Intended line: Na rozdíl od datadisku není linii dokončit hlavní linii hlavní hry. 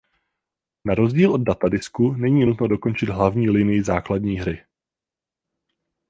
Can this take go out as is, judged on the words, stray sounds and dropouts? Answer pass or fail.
fail